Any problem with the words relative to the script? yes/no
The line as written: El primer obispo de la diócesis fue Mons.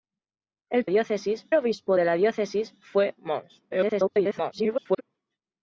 yes